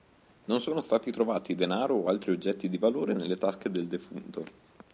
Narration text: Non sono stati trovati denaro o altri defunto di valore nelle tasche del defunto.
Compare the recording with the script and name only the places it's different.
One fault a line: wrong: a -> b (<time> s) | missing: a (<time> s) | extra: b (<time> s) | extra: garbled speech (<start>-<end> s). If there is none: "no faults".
wrong: defunto -> oggetti (2.3 s)